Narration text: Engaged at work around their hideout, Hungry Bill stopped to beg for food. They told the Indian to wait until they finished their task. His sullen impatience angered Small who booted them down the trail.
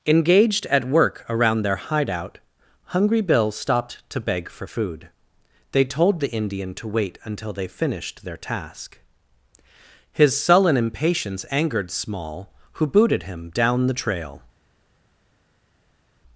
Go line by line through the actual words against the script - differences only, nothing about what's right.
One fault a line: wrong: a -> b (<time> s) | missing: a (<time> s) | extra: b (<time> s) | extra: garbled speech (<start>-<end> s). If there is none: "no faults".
wrong: them -> him (13.2 s)